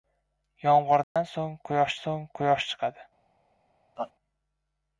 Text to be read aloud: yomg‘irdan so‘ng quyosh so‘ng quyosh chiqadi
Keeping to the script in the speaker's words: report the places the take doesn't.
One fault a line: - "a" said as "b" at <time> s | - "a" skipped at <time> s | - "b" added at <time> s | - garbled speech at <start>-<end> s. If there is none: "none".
none